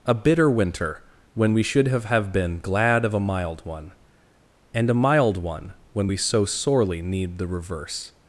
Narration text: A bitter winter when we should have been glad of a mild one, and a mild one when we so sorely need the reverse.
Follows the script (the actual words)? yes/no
no